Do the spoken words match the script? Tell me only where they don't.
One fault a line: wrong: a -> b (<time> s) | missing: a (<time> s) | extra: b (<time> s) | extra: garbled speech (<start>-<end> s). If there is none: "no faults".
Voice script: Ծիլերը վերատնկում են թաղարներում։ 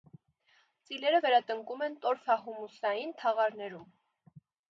extra: տորֆահումուսային (2.1 s)